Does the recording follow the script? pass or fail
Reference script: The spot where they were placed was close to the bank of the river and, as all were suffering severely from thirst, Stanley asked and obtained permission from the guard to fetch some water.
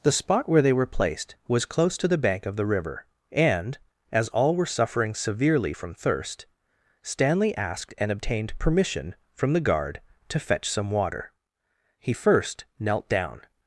fail